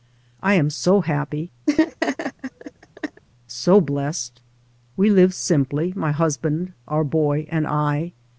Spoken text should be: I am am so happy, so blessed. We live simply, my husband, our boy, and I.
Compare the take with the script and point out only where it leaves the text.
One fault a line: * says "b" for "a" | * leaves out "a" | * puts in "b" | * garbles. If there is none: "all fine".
* leaves out "am"